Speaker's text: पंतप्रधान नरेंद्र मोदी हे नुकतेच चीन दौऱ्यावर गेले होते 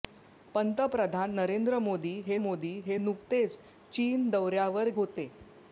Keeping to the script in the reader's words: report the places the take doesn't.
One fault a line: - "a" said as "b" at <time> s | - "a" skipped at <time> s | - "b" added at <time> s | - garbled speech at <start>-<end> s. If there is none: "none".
- "मोदी हे" added at 2.4 s
- "गेले" skipped at 4.9 s